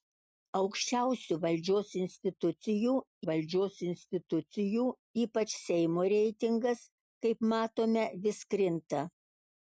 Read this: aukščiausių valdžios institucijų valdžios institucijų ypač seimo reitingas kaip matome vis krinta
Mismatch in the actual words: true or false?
false